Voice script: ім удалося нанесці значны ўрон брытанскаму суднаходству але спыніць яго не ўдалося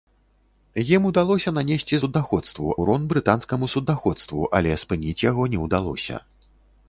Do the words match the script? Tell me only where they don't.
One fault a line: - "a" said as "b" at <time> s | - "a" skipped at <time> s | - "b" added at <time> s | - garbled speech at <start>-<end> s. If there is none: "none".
- "значны" said as "суднаходству" at 2.0 s